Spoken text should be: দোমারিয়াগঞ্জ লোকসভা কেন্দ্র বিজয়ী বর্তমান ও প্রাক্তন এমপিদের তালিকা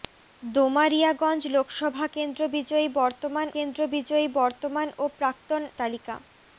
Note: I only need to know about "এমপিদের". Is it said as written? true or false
false